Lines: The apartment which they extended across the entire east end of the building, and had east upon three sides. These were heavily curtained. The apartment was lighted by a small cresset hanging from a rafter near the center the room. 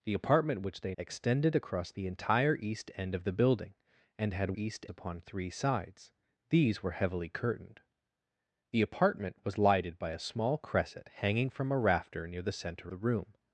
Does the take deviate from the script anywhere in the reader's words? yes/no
no